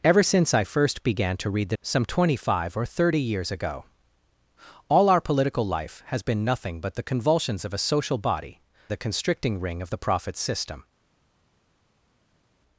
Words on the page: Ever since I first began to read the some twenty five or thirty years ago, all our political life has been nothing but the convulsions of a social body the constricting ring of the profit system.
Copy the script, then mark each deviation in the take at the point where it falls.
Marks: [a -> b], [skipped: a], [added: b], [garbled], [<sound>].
Ever since I first began to read the some twenty five or thirty years ago, all our political life has been nothing but the convulsions of a social body the constricting ring of the profit system.